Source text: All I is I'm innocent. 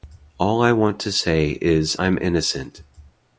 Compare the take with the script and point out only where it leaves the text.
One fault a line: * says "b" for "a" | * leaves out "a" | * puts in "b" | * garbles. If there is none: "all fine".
* puts in "want to say"